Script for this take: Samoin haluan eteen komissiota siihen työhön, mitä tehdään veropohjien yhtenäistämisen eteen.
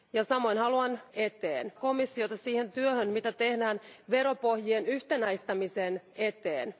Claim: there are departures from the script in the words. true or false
false